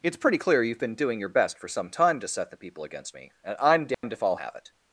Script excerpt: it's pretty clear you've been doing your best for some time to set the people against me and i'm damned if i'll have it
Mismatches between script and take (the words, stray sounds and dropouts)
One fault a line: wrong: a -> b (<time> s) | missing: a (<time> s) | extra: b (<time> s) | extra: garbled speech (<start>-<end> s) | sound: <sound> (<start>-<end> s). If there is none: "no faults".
sound: dropout (3.9-4.0 s)